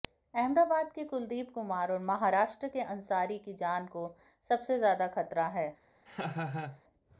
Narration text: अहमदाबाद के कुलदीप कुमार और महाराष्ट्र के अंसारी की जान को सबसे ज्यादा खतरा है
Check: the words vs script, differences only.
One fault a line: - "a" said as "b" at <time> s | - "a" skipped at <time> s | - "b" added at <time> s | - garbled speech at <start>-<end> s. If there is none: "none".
none